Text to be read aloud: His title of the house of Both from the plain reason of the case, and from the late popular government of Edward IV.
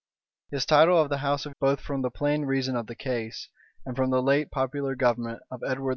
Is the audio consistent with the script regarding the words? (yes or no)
yes